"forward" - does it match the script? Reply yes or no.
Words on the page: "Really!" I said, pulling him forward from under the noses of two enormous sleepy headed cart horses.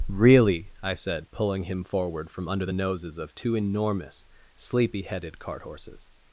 yes